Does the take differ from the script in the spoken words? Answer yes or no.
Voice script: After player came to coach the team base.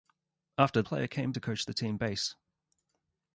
no